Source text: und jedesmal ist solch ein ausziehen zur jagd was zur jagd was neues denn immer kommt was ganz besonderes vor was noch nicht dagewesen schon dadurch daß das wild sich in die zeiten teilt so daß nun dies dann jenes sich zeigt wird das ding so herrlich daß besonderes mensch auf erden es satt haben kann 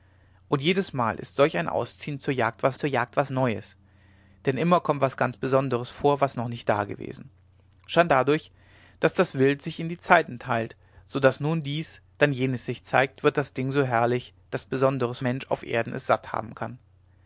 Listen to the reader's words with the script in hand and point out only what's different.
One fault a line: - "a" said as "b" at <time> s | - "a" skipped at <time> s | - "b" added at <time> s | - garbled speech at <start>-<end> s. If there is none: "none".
none